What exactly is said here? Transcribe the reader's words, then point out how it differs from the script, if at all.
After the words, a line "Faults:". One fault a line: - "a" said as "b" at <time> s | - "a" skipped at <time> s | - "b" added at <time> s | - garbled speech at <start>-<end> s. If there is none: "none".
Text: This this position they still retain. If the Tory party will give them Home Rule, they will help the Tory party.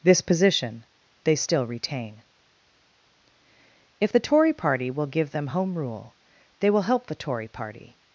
This position they still retain. If the Tory party will give them Home Rule, they will help the Tory party.
Faults:
- "this" skipped at 0.2 s